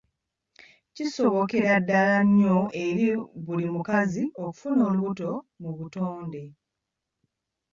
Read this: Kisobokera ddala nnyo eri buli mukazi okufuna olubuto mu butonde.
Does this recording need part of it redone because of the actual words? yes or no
no